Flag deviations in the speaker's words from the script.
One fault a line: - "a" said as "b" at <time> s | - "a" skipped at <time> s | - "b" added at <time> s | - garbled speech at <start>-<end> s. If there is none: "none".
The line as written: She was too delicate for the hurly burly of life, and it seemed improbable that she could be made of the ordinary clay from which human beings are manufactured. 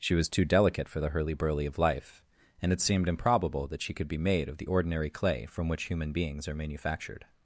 none